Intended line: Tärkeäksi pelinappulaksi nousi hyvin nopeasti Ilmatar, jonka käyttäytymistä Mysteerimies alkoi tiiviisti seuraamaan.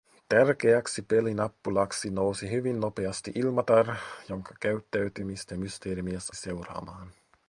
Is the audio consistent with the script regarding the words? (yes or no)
no